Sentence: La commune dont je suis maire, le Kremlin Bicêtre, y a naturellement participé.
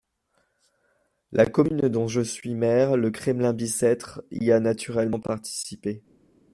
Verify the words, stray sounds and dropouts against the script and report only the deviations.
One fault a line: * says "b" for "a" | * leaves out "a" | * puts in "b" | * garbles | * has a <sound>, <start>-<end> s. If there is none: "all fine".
all fine